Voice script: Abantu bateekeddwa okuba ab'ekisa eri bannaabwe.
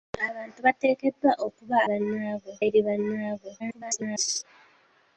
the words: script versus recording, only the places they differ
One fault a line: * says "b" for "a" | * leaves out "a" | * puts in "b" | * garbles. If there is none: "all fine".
* says "bannaabwe" for "ab'ekisa"
* garbles